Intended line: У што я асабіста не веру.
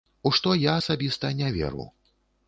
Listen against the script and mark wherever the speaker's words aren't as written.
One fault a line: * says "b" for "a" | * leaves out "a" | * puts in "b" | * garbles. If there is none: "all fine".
all fine